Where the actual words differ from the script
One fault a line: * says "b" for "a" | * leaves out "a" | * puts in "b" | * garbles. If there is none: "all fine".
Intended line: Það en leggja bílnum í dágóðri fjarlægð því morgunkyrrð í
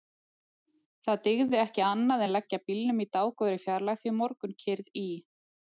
* puts in "dygði ekki annað"